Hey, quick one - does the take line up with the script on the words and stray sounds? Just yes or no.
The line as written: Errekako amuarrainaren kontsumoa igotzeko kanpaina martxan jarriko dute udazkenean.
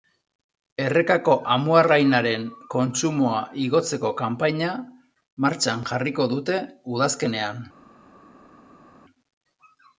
yes